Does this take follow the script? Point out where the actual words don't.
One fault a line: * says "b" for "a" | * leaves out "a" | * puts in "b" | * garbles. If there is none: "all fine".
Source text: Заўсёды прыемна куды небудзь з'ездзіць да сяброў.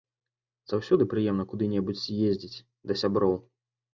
all fine